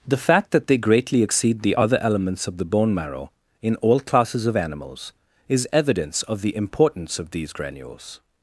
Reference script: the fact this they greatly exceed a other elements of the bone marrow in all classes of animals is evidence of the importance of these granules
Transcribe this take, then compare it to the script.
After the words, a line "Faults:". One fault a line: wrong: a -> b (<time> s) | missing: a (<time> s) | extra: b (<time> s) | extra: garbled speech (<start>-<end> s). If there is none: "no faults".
the fact that they greatly exceed the other elements of the bone marrow in all classes of animals is evidence of the importance of these granules
Faults:
wrong: this -> that (0.5 s)
wrong: a -> the (1.6 s)